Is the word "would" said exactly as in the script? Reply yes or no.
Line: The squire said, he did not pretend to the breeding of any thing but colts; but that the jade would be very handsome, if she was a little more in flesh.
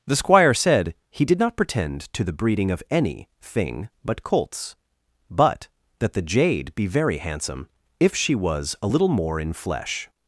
no